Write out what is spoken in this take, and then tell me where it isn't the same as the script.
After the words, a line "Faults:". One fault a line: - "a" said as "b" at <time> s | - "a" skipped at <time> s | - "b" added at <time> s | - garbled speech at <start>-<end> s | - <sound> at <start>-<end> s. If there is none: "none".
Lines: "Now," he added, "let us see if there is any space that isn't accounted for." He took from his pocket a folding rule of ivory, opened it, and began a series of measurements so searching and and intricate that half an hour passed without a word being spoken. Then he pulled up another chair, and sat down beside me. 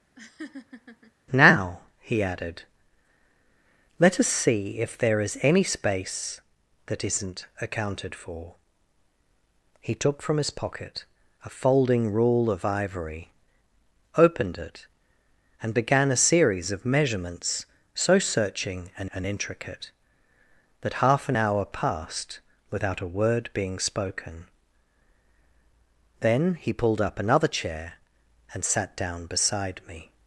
"Now," he added, "let us see if there is any space that isn't accounted for." He took from his pocket a folding rule of ivory, opened it, and began a series of measurements so searching and and intricate that half an hour passed without a word being spoken. Then he pulled up another chair, and sat down beside me.
Faults:
- laugh at 0.2-1.1 s